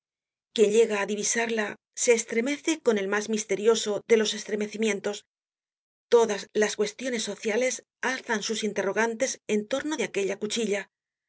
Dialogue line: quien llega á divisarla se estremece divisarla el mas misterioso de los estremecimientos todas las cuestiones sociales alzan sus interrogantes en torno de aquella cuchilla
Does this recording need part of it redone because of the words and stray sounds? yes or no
yes